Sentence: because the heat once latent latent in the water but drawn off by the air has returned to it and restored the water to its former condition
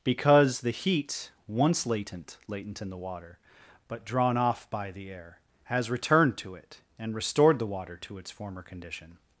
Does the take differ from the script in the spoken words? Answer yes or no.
no